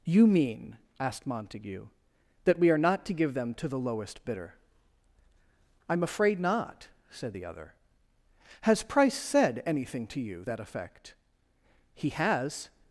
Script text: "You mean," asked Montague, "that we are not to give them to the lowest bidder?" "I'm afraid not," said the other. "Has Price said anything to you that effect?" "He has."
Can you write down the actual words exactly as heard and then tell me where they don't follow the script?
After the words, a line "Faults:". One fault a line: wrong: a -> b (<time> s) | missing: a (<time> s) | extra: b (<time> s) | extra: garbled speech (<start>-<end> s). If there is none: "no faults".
"You mean," asked Montague, "that we are not to give them to the lowest bidder?" "I'm afraid not," said the other. "Has Price said anything to you that effect?" "He has."
Faults:
no faults